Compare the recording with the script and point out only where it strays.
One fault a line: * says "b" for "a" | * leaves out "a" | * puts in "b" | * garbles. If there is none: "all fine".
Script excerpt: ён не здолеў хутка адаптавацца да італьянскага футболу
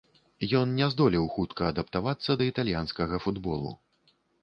all fine